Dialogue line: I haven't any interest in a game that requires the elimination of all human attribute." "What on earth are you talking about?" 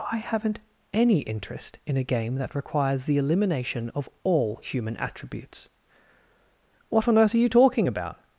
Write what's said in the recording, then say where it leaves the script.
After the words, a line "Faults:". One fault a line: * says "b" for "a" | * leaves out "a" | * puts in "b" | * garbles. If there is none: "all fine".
I haven't any interest in a game that requires the elimination of all human attributes." "What on earth are you talking about?"
Faults:
* says "attributes" for "attribute"